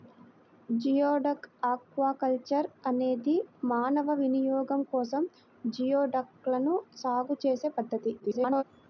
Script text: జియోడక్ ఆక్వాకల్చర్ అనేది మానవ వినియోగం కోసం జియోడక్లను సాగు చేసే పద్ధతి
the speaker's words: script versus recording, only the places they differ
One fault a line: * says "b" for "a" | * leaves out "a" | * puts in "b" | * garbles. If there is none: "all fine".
* garbles